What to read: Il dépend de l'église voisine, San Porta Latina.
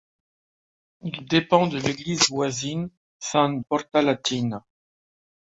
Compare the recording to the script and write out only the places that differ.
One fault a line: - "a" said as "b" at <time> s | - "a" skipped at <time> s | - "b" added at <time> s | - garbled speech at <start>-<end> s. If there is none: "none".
none